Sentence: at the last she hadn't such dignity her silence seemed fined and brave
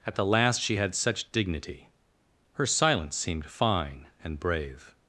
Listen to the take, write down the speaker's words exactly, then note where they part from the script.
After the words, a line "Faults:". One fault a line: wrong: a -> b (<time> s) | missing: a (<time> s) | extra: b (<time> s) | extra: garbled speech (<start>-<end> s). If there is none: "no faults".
at the last she had such dignity her silence seemed fine and brave
Faults:
wrong: hadn't -> had (0.8 s)
wrong: fined -> fine (3.5 s)